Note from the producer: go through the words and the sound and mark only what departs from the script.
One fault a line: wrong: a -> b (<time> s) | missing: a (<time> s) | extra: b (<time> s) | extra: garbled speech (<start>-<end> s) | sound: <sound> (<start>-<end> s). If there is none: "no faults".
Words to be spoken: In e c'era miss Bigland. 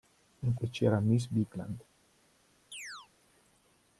sound: chirp (2.7-3.1 s)